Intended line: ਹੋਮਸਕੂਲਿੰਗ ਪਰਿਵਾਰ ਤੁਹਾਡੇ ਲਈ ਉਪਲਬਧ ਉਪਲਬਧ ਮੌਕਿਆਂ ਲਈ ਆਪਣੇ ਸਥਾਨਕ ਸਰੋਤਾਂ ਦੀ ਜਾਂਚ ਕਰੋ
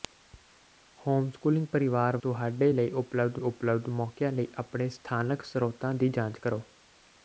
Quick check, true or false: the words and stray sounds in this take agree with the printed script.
true